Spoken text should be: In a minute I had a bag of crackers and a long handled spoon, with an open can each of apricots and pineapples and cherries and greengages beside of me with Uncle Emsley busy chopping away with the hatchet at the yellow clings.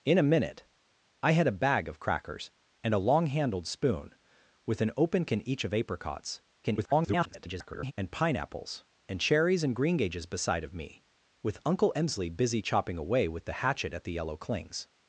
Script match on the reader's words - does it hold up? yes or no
no